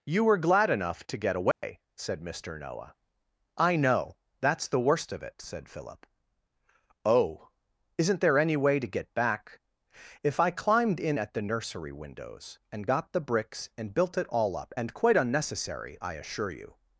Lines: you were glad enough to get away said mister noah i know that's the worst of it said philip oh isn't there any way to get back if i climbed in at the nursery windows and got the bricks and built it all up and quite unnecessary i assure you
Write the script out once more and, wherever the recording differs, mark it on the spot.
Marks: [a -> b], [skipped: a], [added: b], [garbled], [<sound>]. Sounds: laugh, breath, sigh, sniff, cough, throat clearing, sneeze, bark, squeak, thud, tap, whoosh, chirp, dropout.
you were glad enough to get away [dropout] said mister noah i know that's the worst of it said philip oh isn't there any way to get back if i climbed in at the nursery windows and got the bricks and built it all up and quite unnecessary i assure you